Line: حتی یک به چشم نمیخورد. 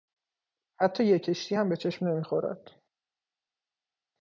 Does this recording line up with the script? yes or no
no